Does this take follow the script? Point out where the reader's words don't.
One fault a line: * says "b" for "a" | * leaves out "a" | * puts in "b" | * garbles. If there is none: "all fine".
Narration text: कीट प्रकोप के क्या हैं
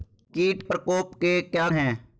all fine